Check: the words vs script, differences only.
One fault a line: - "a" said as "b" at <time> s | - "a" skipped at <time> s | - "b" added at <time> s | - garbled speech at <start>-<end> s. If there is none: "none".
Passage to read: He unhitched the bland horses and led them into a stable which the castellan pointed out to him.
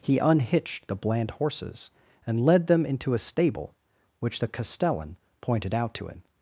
none